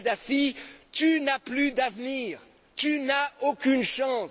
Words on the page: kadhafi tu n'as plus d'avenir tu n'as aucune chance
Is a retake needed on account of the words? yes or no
no